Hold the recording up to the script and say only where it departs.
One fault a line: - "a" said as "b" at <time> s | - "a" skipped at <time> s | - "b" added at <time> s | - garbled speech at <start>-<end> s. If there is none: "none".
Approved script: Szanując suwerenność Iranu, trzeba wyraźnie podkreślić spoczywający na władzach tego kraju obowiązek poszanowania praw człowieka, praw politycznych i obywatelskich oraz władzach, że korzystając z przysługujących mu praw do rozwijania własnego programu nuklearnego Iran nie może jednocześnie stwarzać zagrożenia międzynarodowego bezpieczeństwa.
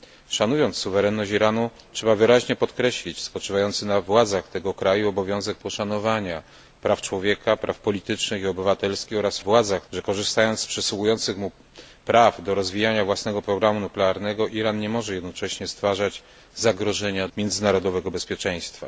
none